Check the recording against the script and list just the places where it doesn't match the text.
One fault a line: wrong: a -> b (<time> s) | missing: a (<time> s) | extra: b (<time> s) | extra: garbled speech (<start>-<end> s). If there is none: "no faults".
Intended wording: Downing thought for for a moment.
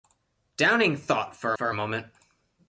no faults